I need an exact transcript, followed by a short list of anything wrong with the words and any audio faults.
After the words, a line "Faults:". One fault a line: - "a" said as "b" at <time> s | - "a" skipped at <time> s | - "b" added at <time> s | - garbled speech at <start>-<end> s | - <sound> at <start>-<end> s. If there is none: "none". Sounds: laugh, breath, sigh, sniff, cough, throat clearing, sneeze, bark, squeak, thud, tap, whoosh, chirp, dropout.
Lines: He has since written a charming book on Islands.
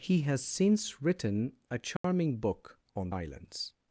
He has since written a charming book on Islands.
Faults:
- dropout at 2.0-2.0 s